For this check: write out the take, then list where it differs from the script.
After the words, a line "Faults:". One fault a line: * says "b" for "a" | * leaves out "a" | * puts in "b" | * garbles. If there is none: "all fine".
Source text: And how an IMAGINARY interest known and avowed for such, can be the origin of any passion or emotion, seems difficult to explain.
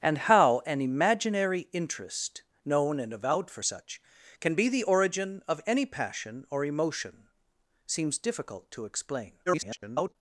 And how an IMAGINARY interest known and avowed for such, can be the origin of any passion or emotion, seems difficult to explain. [garbled]
Faults:
* garbles